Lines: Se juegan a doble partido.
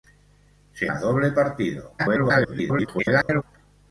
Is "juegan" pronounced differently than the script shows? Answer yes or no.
yes